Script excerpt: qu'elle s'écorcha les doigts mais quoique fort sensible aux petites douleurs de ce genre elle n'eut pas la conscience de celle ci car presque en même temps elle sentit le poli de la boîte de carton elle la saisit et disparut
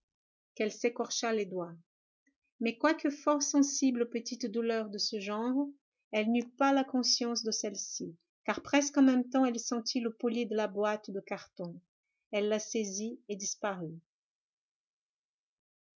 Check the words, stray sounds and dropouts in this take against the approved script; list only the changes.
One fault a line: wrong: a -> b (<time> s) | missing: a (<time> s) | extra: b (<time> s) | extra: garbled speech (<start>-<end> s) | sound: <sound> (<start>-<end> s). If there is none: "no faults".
no faults